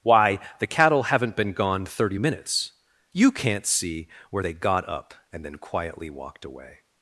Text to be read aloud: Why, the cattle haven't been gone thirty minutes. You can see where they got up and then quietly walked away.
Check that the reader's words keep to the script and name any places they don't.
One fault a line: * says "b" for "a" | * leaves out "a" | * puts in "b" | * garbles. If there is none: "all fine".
* says "can't" for "can"